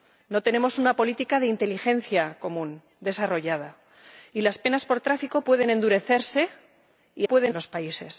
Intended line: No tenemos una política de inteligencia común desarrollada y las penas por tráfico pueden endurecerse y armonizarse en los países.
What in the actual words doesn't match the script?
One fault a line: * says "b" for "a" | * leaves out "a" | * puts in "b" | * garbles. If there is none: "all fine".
* says "pueden" for "armonizarse"